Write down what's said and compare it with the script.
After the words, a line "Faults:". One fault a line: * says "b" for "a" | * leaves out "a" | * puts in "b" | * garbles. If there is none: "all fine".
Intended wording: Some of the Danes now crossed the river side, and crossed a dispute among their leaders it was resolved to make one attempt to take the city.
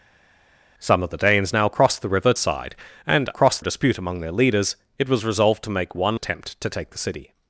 Some of the Danes now crossed the river side, and crossed a dispute among their leaders it was resolved to make one attempt to take the city.
Faults:
all fine